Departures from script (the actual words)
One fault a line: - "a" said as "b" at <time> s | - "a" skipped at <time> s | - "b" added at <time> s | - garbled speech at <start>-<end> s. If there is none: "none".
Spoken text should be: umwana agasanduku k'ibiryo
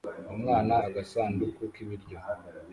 none